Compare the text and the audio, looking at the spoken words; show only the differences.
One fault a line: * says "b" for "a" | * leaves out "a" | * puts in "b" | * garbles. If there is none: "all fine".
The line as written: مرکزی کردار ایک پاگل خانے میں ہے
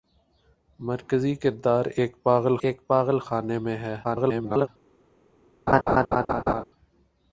* puts in "ایک پاگل"
* garbles